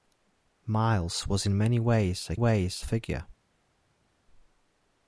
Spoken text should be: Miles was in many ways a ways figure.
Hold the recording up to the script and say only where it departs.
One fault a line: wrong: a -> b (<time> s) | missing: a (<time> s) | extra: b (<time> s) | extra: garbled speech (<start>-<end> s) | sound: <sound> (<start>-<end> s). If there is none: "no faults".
no faults